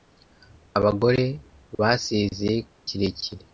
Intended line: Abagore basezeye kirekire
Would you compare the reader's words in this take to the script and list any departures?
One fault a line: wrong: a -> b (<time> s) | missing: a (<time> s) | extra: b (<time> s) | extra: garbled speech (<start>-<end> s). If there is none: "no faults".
no faults